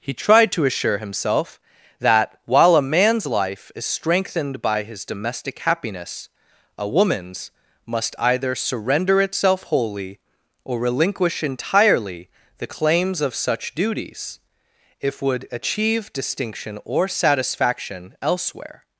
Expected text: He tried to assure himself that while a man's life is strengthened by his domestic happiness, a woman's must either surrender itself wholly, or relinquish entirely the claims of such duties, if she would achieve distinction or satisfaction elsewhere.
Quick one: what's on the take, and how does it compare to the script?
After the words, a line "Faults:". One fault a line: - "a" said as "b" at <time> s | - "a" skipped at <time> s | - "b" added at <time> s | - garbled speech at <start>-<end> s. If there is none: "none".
He tried to assure himself that while a man's life is strengthened by his domestic happiness, a woman's must either surrender itself wholly, or relinquish entirely the claims of such duties, if would achieve distinction or satisfaction elsewhere.
Faults:
- "she" skipped at 15.2 s